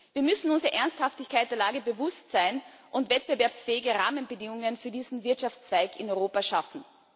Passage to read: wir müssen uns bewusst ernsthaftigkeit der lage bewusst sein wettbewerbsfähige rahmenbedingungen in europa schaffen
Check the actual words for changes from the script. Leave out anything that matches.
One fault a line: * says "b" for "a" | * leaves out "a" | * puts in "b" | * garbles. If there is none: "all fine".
* says "der" for "bewusst"
* puts in "und"
* puts in "für diesen wirtschaftszweig"